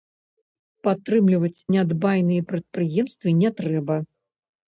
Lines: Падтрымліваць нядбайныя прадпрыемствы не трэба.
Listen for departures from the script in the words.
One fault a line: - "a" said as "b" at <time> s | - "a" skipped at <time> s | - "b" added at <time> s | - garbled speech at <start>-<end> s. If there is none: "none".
none